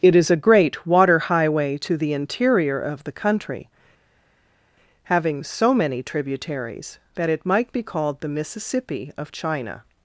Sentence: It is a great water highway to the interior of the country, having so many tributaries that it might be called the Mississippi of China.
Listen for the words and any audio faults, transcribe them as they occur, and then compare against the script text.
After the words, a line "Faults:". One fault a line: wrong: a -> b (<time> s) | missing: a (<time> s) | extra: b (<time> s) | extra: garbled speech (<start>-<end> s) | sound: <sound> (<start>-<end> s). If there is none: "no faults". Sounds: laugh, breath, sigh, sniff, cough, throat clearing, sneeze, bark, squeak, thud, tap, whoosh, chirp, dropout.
It is a great water highway to the interior of the country, having so many tributaries that it might be called the Mississippi of China.
Faults:
no faults